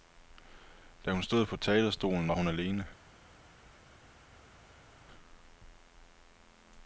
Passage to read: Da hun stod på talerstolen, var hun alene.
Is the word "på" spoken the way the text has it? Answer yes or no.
yes